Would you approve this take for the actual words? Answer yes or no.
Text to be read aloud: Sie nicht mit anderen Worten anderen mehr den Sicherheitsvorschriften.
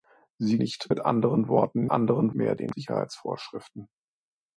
yes